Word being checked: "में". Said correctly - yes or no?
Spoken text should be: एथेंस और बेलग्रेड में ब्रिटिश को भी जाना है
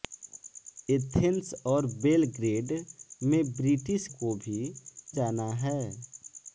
yes